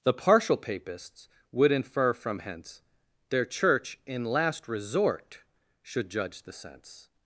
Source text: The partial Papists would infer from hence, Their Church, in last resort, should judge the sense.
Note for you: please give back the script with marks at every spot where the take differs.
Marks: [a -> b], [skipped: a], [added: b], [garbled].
The partial Papists would infer from hence, Their Church, in last resort, should judge the sense.